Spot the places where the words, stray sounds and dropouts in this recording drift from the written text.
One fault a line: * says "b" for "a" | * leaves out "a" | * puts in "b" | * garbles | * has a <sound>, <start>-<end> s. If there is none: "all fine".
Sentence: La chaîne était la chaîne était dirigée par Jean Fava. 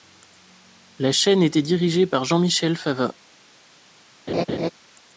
* leaves out "la chaîne était"
* puts in "Michel"
* has a laugh, 4.3-4.7 s